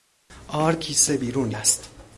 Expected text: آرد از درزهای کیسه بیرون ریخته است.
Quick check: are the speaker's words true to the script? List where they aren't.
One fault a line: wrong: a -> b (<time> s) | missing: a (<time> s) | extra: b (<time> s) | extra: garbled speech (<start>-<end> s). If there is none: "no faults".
missing: از درزهای (0.8 s)
missing: ریخته (1.5 s)